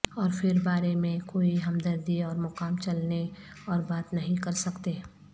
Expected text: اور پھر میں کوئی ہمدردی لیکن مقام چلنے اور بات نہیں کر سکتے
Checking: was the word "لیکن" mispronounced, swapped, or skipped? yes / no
yes